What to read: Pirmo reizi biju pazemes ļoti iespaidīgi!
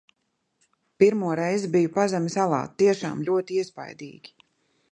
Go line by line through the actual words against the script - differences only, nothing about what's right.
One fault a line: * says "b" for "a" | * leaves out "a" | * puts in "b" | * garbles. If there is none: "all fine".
* puts in "alā tiešām"